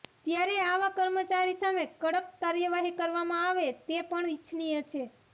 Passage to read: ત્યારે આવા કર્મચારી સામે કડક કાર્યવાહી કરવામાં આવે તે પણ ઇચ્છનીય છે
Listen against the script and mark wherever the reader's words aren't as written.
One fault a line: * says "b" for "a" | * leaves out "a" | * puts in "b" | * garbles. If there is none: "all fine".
all fine